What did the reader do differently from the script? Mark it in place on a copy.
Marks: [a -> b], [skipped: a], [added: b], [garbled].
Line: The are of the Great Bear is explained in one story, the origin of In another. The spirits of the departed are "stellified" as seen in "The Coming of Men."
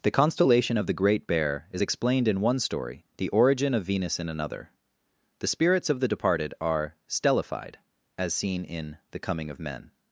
The [are -> constellation] of the Great Bear is explained in one story, the origin of [added: Venus] In another. The spirits of the departed are "stellified" as seen in "The Coming of Men."